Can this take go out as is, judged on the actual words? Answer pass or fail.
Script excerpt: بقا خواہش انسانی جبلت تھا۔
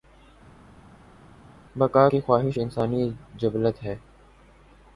fail